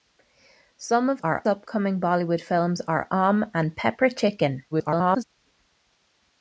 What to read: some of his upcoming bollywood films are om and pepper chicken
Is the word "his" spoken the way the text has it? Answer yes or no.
no